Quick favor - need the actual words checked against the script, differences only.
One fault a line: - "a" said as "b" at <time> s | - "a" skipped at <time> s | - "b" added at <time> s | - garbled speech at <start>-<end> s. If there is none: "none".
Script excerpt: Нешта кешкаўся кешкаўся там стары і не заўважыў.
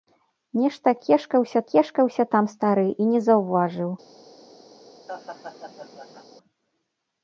none